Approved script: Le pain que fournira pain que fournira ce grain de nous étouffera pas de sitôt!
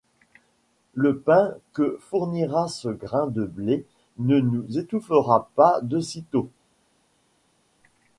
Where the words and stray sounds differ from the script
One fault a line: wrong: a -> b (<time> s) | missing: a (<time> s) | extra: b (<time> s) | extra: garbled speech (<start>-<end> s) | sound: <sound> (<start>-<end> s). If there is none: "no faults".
missing: pain que fournira (2.7 s)
extra: blé ne (3.5 s)